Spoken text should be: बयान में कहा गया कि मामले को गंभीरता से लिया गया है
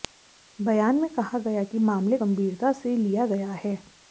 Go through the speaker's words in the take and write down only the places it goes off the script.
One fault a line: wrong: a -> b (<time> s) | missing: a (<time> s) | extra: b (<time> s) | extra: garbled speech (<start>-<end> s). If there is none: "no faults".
missing: को (2.2 s)